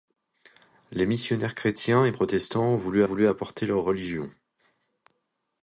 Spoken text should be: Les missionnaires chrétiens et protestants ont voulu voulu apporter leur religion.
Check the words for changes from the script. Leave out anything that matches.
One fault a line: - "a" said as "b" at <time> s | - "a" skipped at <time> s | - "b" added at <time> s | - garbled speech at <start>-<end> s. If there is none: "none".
none